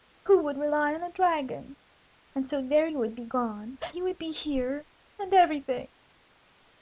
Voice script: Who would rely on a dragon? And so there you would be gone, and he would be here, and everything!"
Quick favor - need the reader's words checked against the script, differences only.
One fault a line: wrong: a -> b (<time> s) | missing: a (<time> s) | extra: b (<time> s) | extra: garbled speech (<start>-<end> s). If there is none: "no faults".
missing: and (3.8 s)